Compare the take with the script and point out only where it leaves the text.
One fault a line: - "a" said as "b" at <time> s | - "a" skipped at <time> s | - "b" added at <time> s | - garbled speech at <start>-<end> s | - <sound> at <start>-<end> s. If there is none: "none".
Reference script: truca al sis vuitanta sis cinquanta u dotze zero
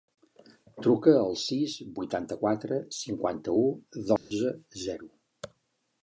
- "sis" said as "quatre" at 2.4 s
- dropout at 4.2-4.3 s